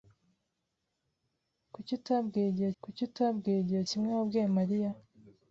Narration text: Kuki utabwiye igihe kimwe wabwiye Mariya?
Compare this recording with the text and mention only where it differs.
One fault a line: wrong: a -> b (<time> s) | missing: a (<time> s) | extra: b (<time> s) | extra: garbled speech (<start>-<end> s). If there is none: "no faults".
extra: kuki utabwiye igihe (2.8 s)